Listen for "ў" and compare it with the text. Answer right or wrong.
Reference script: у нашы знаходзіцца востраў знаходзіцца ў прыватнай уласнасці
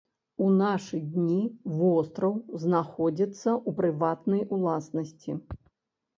right